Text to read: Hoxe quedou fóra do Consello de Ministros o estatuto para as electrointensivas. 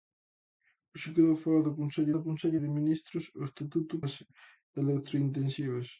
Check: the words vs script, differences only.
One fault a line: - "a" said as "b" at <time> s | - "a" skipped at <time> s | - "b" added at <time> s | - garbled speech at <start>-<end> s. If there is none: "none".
- "do Consello" added at 2.1 s
- "para" skipped at 3.9 s